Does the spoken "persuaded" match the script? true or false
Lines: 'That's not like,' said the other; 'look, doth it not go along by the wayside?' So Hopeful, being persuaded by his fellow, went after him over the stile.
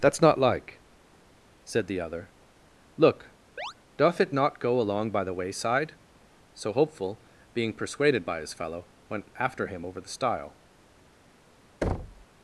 true